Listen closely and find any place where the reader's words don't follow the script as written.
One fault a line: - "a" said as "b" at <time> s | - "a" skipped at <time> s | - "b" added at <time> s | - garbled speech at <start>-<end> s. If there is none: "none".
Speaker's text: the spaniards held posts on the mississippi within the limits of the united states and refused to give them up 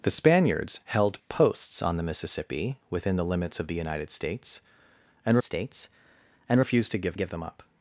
- "states and" added at 5.4 s
- "give" added at 7.1 s